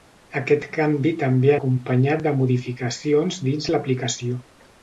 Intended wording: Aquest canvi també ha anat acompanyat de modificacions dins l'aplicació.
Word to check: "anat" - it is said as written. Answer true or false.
false